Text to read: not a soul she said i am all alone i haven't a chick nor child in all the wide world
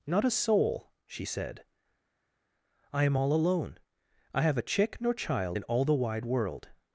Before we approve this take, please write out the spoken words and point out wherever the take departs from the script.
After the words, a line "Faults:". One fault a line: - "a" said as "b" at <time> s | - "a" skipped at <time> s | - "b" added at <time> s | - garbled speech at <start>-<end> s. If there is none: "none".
not a soul she said i am all alone i have a chick nor child in all the wide world
Faults:
- "haven't" said as "have" at 4.4 s